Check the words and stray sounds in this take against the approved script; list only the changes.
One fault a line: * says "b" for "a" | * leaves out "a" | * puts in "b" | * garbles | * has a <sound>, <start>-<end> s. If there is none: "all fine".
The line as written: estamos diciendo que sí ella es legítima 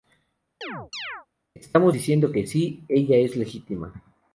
* has a chirp, 0.6-1.3 s